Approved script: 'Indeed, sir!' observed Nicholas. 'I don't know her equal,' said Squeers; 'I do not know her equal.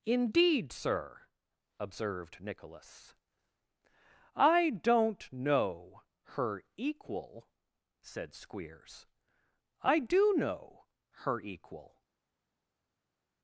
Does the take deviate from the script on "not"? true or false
true